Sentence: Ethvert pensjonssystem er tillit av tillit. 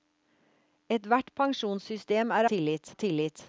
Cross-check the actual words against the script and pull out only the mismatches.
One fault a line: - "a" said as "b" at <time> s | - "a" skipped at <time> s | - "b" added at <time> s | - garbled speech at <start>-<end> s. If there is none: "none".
none